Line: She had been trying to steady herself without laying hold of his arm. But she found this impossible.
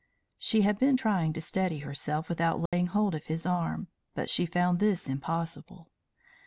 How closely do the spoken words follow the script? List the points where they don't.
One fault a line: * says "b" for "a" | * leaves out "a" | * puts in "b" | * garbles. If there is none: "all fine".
all fine